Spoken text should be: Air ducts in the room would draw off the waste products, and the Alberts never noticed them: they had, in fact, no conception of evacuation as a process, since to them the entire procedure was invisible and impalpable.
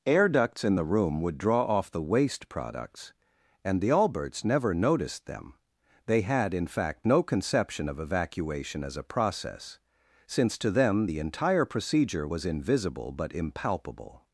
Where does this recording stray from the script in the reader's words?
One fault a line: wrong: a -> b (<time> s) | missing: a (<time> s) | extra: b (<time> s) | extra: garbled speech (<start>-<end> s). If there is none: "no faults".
wrong: and -> but (13.1 s)